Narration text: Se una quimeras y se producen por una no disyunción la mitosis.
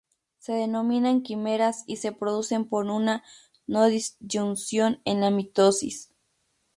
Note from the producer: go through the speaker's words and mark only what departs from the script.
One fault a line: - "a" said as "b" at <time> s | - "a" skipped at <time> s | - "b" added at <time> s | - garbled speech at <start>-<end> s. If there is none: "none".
- "una" said as "denominan" at 0.5 s
- "en" added at 5.0 s